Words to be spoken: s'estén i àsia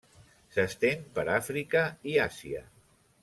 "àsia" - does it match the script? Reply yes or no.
yes